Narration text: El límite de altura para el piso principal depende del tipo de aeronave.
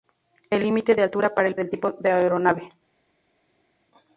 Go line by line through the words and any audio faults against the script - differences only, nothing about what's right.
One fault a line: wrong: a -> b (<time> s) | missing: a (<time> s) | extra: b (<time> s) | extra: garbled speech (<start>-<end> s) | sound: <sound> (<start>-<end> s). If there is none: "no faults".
missing: piso principal depende (1.6 s)